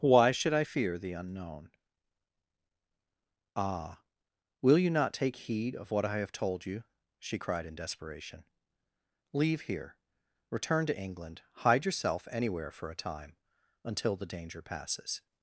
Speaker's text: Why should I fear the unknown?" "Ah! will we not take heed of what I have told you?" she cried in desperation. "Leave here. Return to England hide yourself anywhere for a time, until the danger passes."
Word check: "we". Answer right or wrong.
wrong